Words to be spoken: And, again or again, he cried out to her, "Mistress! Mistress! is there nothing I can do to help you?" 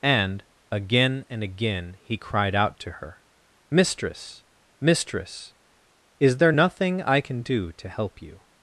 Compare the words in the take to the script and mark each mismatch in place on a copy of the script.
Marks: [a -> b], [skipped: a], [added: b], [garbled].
And, again [or -> and] again, he cried out to her, "Mistress! Mistress! is there nothing I can do to help you?"